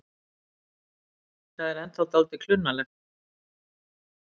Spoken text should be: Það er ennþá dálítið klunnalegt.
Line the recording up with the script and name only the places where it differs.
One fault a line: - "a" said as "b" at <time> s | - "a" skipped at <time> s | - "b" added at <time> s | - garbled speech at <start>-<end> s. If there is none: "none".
none